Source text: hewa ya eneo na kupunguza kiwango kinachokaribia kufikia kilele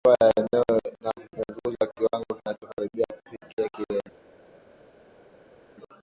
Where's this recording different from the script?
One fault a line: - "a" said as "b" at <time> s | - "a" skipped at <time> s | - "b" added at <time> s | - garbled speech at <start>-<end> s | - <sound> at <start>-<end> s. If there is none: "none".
none